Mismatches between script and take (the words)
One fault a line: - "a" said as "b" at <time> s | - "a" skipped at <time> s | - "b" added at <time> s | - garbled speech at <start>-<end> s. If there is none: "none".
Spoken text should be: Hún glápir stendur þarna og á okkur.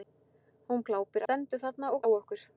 none